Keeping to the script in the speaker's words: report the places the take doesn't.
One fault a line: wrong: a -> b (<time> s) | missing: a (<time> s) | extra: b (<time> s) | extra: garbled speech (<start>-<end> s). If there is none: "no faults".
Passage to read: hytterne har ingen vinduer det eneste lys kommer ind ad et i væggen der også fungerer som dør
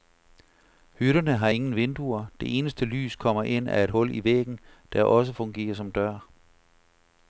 extra: hul (3.9 s)